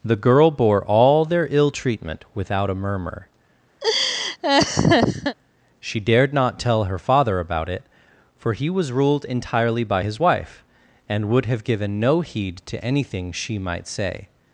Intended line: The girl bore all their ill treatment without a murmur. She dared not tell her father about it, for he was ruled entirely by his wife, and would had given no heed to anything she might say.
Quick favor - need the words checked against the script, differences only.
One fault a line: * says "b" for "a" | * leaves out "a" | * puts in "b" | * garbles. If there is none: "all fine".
* says "have" for "had"